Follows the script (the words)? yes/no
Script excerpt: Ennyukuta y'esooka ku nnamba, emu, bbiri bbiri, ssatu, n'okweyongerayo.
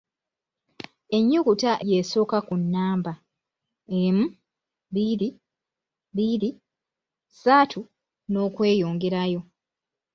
yes